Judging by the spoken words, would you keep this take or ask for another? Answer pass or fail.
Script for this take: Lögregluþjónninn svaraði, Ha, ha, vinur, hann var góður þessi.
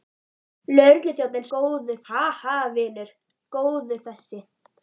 fail